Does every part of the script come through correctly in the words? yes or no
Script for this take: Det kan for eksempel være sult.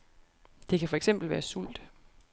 yes